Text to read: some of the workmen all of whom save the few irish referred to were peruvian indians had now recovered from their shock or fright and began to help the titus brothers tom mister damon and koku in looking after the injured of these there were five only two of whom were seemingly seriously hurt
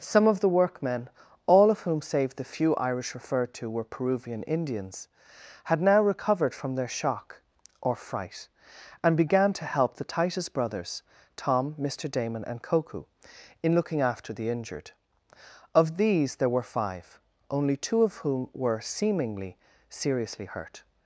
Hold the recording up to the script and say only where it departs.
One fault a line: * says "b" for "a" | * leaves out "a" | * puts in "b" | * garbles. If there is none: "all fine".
all fine